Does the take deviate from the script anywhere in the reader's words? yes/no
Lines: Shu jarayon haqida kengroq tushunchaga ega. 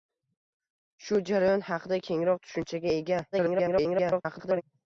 yes